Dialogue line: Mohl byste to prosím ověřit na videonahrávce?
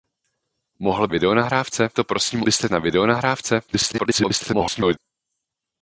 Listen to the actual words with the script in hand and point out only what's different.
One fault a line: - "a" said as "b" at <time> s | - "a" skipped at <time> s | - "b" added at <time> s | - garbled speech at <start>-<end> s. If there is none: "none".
- "byste" said as "videonahrávce" at 1.1 s
- "ověřit" said as "byste" at 2.4 s
- garbled speech at 3.7-5.0 s